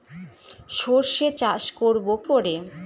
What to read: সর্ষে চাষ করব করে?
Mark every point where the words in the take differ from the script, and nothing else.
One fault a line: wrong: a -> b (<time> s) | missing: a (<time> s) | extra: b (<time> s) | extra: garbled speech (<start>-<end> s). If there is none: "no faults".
no faults